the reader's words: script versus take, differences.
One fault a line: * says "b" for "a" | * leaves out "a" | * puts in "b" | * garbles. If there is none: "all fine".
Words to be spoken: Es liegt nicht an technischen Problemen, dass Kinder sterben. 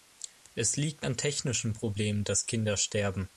* leaves out "nicht"